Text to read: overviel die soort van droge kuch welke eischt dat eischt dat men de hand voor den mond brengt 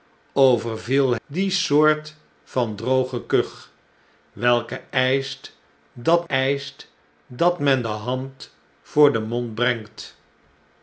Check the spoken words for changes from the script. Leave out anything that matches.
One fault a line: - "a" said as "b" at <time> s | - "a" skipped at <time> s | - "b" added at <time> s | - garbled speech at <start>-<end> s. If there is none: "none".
none